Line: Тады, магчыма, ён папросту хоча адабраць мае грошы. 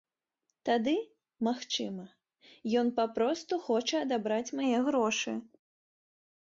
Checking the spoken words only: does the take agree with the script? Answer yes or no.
yes